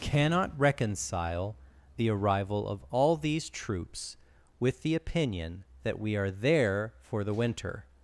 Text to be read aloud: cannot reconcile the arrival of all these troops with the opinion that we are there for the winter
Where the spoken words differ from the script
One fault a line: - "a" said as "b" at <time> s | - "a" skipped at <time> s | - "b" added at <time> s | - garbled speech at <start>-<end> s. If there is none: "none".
none